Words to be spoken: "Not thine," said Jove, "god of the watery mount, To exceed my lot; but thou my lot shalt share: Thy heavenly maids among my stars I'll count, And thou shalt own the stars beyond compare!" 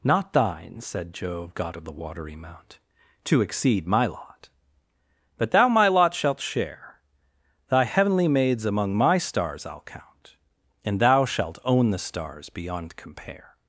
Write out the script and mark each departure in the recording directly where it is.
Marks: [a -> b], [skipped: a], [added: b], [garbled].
"Not thine," said Jove, "god of the watery mount, To exceed my lot; but thou my lot shalt share: Thy heavenly maids among my stars I'll count, And thou shalt own the stars beyond compare!"